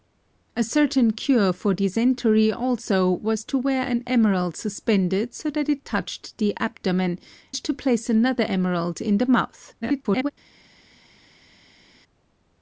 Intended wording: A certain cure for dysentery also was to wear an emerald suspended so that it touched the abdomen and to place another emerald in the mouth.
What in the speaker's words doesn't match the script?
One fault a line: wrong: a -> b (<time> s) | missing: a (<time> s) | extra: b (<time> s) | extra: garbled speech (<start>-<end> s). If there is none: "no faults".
missing: and (7.2 s)
extra: garbled speech (9.8-10.3 s)